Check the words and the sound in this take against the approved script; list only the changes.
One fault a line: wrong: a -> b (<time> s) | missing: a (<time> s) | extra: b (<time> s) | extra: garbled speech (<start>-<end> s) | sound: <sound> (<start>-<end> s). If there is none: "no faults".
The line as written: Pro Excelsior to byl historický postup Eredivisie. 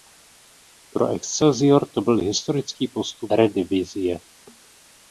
no faults